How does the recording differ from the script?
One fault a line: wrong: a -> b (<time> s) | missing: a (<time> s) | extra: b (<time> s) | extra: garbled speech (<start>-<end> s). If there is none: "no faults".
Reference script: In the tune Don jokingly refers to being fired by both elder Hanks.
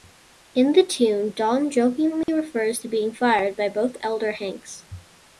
no faults